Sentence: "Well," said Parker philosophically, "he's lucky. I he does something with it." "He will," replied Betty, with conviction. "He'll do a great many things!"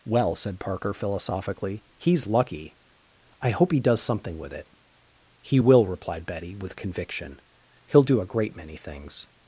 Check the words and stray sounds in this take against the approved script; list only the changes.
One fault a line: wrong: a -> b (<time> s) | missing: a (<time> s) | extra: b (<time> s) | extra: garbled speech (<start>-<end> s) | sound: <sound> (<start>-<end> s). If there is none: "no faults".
extra: hope (3.5 s)